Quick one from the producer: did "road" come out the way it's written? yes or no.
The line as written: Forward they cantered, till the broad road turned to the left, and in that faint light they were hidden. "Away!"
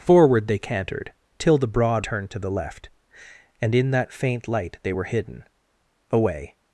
no